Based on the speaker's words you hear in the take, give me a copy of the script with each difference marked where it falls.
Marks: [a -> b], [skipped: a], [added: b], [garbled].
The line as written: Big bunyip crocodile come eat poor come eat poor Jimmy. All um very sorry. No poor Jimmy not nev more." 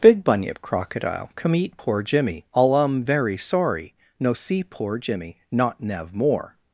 Big bunyip crocodile come eat poor [skipped: come eat poor] Jimmy. All um very sorry. No [added: see] poor Jimmy not nev more."